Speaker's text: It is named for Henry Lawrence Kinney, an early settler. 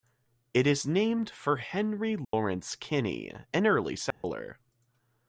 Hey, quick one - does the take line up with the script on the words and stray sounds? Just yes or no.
no